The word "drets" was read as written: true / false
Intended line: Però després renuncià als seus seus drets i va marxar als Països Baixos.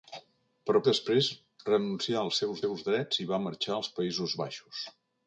true